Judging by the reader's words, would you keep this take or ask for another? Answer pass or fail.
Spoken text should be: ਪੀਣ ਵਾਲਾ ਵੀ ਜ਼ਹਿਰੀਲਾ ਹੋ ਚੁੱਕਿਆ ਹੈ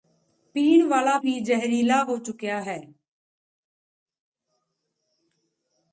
pass